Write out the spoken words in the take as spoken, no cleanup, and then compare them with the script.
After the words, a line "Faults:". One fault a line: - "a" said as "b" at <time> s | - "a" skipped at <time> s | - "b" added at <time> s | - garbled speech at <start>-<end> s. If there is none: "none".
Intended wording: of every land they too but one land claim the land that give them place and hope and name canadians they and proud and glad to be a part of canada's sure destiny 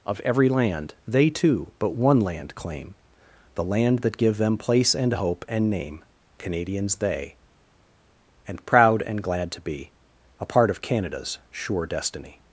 of every land they too but one land claim the land that give them place and hope and name canadians they and proud and glad to be a part of canada's sure destiny
Faults:
none